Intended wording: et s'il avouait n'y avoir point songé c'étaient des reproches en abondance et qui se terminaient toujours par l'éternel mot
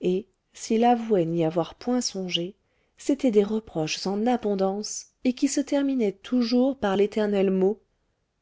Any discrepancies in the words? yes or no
no